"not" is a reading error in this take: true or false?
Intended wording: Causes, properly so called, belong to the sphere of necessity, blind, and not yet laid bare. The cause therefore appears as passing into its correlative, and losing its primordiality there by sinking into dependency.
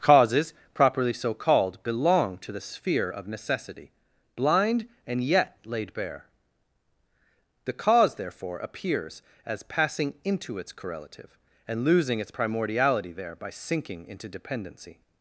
true